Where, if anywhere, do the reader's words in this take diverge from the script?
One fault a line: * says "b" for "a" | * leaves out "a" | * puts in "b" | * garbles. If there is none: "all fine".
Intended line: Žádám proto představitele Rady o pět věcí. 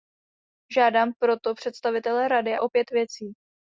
all fine